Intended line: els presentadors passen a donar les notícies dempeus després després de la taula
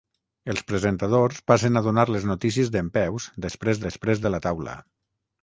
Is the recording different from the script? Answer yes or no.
no